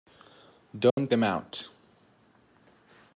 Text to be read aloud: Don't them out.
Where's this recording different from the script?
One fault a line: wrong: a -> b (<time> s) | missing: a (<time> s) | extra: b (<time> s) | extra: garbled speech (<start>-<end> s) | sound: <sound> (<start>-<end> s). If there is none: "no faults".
sound: dropout (0.9-1.0 s)